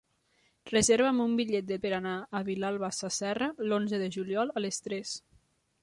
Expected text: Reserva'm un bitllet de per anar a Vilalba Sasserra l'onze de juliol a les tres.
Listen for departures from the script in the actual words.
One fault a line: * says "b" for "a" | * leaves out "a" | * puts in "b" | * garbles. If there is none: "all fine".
all fine